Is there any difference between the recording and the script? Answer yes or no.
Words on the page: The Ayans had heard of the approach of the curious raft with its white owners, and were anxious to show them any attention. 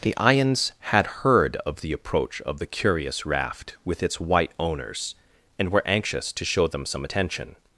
yes